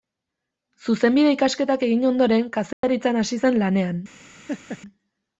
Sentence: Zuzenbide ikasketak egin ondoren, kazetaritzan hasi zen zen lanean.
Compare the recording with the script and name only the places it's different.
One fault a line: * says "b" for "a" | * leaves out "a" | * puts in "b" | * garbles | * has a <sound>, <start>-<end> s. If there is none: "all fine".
* has a dropout, 2.7-2.8 s
* leaves out "zen"
* has a laugh, 4.5-4.8 s